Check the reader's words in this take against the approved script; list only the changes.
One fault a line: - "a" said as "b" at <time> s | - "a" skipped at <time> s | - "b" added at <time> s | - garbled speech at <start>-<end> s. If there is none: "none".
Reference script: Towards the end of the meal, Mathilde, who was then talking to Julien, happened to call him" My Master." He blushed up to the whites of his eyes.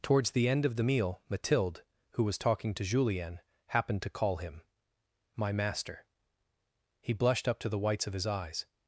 - "then" skipped at 2.4 s